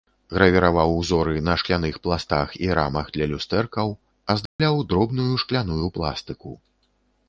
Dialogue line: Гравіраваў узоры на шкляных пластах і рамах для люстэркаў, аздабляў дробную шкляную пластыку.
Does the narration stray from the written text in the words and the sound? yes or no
yes